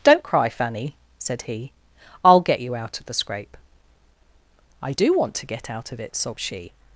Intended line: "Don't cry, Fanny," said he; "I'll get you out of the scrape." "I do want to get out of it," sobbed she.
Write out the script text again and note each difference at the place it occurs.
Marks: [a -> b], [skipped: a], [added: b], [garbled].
"Don't cry, Fanny," said he; "I'll get you out of the scrape." "I do want to get out of it," sobbed she.